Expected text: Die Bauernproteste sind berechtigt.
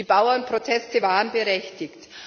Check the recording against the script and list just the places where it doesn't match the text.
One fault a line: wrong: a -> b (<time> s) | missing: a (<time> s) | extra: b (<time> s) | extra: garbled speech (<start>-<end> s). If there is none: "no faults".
wrong: sind -> waren (1.0 s)